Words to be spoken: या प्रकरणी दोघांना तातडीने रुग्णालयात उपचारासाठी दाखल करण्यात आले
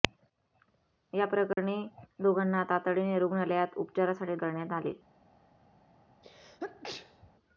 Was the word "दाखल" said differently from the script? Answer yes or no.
yes